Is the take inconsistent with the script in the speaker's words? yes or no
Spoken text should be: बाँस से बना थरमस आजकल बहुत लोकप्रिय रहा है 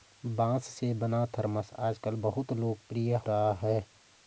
no